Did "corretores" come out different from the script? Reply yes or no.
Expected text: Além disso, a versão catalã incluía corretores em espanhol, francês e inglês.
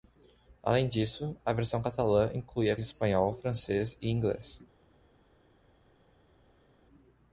yes